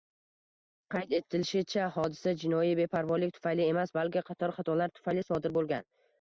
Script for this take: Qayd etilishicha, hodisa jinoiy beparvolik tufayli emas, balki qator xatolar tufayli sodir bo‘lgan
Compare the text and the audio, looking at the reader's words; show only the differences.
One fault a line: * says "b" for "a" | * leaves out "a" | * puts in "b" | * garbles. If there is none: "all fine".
all fine